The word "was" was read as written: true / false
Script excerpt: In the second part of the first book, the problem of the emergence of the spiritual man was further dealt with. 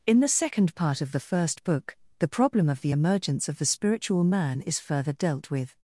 false